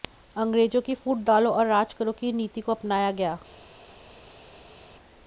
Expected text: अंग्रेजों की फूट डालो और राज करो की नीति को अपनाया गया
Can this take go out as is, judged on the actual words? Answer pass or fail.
pass